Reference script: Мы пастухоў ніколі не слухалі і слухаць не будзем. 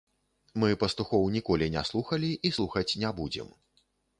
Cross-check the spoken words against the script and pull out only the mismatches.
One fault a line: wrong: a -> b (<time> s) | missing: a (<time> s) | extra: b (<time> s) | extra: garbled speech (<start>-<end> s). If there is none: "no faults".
no faults